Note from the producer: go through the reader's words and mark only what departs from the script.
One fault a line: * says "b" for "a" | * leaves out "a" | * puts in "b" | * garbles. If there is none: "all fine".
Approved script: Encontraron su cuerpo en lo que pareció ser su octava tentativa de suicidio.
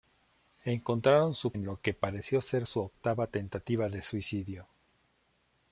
* leaves out "cuerpo"